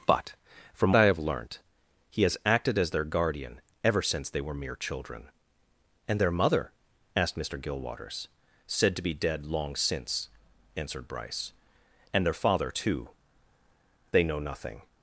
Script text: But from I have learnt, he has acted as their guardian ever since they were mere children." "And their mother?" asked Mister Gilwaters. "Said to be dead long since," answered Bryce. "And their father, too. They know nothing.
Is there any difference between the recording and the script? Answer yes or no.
no